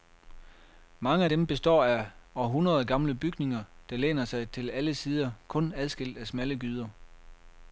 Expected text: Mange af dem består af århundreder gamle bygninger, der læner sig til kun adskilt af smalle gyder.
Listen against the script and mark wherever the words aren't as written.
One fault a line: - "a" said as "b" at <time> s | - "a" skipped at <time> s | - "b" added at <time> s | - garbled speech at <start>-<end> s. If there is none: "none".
- "alle sider" added at 4.7 s